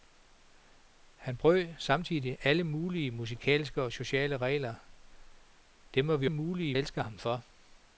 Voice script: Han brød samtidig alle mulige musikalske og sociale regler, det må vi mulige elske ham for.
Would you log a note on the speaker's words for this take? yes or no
no